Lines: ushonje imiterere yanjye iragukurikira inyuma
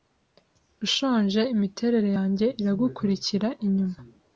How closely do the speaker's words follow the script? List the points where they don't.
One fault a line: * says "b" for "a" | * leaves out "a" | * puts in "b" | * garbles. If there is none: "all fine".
all fine